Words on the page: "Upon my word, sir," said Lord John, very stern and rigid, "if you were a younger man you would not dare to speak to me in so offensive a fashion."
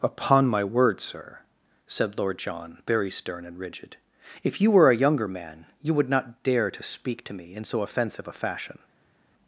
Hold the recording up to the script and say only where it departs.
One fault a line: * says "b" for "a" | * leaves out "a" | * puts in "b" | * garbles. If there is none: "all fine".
all fine